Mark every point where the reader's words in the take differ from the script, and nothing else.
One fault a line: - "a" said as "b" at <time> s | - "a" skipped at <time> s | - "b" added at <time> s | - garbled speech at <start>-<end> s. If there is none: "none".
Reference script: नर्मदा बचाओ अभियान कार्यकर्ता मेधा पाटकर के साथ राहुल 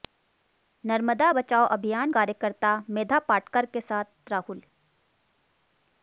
none